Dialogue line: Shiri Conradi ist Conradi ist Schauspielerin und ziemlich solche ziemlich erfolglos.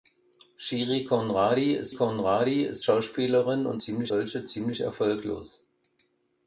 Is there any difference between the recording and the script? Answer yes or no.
no